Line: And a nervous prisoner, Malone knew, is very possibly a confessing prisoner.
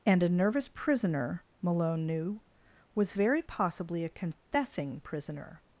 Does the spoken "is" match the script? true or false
false